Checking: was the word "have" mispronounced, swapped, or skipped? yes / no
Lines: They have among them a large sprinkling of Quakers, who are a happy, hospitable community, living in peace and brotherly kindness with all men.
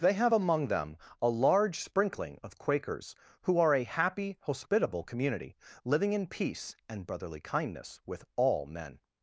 no